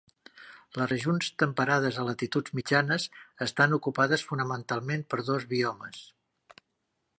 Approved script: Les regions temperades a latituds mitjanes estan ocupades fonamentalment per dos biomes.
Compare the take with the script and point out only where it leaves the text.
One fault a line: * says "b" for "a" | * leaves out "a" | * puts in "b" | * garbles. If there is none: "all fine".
all fine